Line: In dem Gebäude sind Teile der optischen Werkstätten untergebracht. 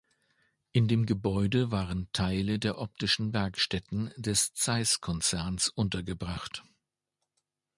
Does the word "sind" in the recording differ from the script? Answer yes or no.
yes